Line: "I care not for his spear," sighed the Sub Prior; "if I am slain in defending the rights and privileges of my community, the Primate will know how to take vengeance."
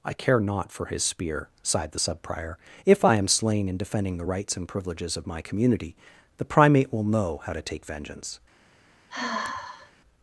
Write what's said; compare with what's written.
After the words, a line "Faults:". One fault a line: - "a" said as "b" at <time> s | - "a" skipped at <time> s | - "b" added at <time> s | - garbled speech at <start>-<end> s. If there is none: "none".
"I care not for his spear," sighed the Sub Prior; "if I am slain in defending the rights and privileges of my community, the Primate will know how to take vengeance."
Faults:
none